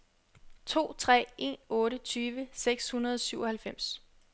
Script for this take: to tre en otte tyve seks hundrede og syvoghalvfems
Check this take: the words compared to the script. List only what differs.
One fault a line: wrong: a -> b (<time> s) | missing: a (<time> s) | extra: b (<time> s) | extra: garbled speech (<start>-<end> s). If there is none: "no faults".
no faults